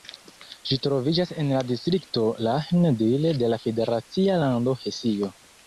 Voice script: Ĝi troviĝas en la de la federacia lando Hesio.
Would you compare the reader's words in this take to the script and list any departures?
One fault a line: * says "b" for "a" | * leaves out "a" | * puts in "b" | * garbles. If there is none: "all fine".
* puts in "distrikto Lahn Dill"